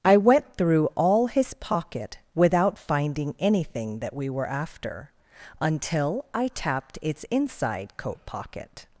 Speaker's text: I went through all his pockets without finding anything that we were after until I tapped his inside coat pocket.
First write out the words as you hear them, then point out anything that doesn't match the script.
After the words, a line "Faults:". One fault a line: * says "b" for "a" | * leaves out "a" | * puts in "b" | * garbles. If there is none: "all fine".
I went through all his pocket without finding anything that we were after until I tapped its inside coat pocket.
Faults:
* says "pocket" for "pockets"
* says "its" for "his"